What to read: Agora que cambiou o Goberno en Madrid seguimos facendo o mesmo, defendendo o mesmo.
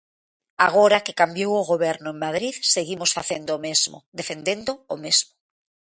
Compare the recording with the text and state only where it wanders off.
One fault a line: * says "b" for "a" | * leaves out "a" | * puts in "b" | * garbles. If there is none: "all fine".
all fine